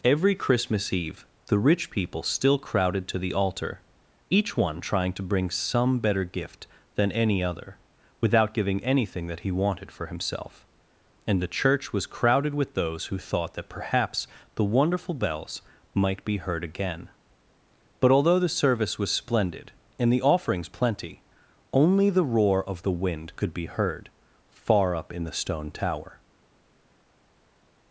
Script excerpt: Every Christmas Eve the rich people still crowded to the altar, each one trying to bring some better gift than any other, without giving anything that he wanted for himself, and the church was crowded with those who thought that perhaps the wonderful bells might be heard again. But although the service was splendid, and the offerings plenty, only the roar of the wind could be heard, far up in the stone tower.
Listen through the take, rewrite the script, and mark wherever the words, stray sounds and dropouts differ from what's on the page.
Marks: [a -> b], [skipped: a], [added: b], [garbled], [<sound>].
Every Christmas Eve the rich people still crowded to the altar, each one trying to bring some better gift than any other, without giving anything that he wanted for himself, and the church was crowded with those who thought that perhaps the wonderful bells might be heard again. But although the service was splendid, and the offerings plenty, only the roar of the wind could be heard, far up in the stone tower.